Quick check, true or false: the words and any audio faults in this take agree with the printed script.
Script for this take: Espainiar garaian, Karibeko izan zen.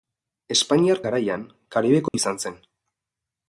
false